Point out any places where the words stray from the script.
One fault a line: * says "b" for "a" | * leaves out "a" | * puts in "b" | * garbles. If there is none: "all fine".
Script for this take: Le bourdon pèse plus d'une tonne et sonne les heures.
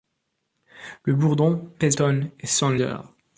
* leaves out "plus d'une"
* leaves out "les"